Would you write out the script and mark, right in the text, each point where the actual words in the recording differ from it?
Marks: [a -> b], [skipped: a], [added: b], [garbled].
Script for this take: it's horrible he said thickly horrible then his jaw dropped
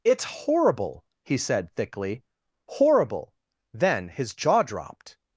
it's horrible he said thickly horrible then his jaw dropped